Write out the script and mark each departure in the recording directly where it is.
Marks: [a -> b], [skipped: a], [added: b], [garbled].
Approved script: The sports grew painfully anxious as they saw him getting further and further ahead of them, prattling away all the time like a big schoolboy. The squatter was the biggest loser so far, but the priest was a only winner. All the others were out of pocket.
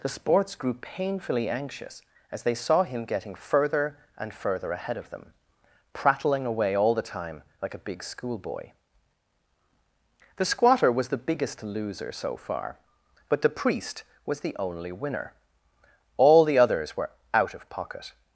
The sports grew painfully anxious as they saw him getting further and further ahead of them, prattling away all the time like a big schoolboy. The squatter was the biggest loser so far, but the priest was [a -> the] only winner. All the others were out of pocket.